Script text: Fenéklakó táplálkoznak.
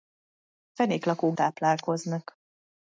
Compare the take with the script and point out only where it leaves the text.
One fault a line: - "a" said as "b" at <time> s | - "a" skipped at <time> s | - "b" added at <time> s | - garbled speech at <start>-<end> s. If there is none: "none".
none